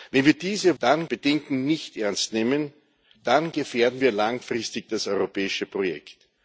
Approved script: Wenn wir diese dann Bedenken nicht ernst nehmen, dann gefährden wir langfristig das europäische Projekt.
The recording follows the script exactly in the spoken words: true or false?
true